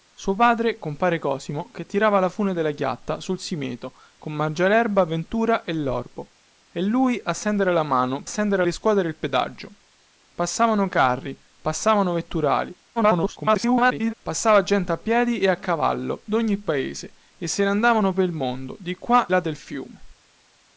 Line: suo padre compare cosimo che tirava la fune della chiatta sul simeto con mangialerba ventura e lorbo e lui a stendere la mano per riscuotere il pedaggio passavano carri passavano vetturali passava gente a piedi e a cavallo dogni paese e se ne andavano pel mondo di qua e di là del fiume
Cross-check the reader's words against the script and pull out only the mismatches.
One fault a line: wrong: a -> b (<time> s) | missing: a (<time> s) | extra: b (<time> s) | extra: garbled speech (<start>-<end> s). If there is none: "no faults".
wrong: per -> stendere (8.3 s)
extra: garbled speech (13.0-14.1 s)
missing: e di (19.3 s)